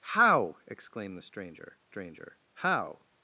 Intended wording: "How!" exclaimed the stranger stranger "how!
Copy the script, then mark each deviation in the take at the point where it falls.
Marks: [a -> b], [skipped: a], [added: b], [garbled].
"How!" exclaimed the stranger stranger "how!